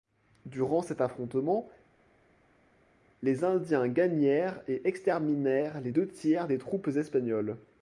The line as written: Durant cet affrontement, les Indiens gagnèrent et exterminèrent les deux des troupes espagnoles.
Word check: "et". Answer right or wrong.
right